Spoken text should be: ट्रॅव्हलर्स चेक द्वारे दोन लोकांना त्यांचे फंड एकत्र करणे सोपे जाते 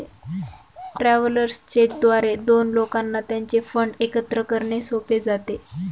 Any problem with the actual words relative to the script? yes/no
no